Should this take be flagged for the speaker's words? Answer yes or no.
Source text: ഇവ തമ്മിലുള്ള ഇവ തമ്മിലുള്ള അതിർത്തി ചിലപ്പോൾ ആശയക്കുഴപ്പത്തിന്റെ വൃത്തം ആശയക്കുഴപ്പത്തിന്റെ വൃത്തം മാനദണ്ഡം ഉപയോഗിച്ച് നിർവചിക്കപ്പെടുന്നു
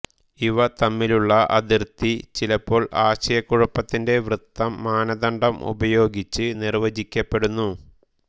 yes